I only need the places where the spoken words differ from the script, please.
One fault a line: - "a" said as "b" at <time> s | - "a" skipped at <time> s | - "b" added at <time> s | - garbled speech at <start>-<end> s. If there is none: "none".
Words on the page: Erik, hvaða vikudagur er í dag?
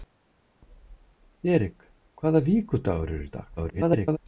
- garbled speech at 3.6-4.2 s